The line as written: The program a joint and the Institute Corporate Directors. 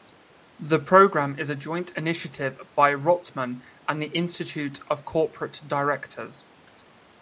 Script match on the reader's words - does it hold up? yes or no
no